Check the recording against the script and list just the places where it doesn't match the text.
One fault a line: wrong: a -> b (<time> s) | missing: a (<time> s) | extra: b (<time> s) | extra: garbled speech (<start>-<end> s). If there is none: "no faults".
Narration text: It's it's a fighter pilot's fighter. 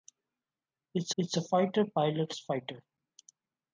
no faults